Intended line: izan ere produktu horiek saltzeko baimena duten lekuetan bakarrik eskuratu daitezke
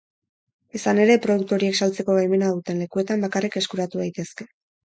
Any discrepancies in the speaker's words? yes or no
no